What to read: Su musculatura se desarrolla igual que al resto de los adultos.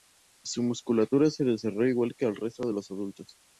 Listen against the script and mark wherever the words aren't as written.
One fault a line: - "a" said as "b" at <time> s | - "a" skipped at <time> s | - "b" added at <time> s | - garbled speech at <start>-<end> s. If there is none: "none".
none